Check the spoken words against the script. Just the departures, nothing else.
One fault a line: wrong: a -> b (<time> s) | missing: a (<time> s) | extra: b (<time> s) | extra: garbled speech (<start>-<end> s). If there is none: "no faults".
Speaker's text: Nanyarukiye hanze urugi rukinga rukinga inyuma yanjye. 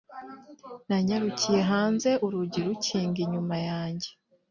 missing: rukinga (3.2 s)